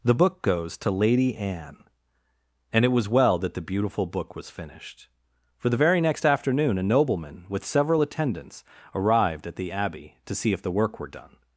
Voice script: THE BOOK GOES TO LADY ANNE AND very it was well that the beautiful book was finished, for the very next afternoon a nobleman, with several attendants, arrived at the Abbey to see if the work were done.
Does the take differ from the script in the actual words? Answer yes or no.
yes